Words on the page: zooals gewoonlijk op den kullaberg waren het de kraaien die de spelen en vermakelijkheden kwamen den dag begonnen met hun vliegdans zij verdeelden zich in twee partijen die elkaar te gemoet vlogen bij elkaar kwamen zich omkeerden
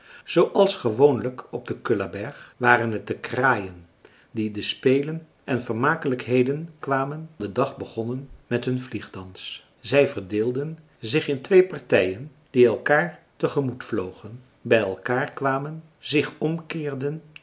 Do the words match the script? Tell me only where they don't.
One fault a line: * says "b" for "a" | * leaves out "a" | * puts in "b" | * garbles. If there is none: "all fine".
all fine